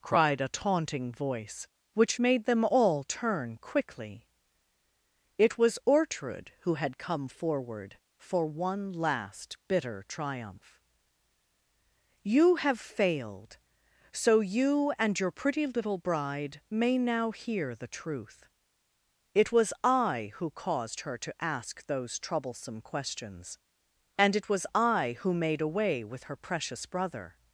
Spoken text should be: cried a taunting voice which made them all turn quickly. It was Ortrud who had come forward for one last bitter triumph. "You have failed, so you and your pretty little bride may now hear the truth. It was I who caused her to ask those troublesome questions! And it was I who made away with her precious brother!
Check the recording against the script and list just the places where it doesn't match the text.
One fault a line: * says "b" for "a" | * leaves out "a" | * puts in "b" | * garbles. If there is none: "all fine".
all fine